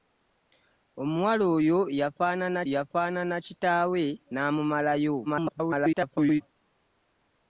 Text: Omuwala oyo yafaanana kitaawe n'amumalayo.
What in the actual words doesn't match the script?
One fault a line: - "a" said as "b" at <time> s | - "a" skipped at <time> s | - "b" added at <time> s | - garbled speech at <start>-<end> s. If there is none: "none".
- "yafaanana" added at 2.7 s
- garbled speech at 5.3-6.4 s